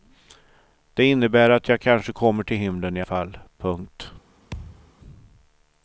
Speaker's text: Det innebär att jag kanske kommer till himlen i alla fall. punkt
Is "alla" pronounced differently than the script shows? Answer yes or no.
yes